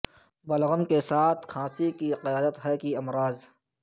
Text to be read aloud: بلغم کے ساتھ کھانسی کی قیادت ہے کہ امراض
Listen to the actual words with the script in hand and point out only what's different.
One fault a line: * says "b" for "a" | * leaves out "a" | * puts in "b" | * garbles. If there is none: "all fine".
all fine